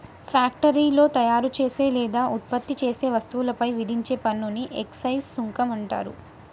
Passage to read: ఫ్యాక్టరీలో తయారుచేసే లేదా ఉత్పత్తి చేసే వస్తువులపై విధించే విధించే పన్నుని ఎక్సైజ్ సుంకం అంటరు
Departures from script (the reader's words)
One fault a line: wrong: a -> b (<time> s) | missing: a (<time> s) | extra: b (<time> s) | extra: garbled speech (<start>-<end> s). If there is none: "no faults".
missing: విధించే (4.2 s)